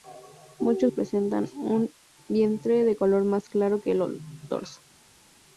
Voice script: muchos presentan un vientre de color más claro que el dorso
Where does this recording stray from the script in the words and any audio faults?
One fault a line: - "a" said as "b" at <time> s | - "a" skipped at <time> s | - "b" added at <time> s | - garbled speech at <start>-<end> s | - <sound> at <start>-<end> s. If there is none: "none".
none